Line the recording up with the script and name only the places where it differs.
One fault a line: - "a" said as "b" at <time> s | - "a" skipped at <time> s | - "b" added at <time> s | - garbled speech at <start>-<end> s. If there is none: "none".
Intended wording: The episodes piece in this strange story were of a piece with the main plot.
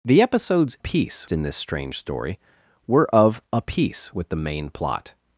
none